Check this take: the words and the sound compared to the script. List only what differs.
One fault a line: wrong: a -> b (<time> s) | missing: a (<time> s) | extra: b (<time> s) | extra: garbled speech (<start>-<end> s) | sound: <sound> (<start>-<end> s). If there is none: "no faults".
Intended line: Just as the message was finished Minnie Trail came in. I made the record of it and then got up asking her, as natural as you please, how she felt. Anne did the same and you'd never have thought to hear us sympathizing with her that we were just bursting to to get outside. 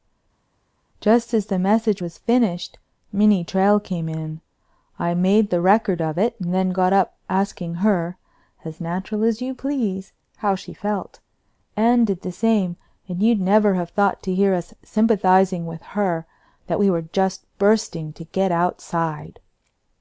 missing: to (18.2 s)